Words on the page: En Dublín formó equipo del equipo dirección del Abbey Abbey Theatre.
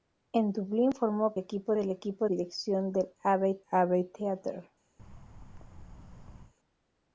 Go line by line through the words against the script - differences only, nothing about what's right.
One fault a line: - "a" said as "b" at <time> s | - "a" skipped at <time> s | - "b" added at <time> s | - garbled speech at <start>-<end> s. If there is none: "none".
none